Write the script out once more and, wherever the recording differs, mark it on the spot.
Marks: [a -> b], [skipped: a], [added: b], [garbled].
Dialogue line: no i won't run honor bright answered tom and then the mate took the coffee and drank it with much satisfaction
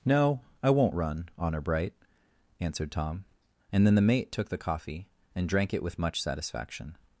no i won't run honor bright answered tom and then the mate took the coffee and drank it with much satisfaction